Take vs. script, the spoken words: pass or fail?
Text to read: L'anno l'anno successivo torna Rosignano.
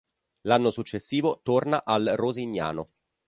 fail